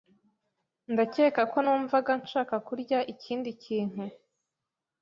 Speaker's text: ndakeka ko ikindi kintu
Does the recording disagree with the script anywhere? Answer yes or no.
yes